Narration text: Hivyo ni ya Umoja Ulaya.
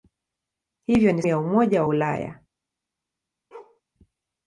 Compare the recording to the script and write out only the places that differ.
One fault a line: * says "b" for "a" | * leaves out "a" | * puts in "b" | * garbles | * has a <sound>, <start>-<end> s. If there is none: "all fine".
* has a bark, 3.5-3.8 s